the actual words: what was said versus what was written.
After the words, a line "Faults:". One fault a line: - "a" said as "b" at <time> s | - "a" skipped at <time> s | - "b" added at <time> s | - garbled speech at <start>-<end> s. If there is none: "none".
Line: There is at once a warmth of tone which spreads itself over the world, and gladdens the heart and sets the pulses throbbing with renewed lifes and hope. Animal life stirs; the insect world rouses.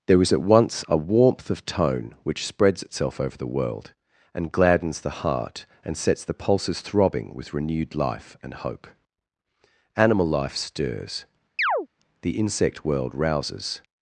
There is at once a warmth of tone which spreads itself over the world, and gladdens the heart and sets the pulses throbbing with renewed life and hope. Animal life stirs; the insect world rouses.
Faults:
- "lifes" said as "life" at 7.9 s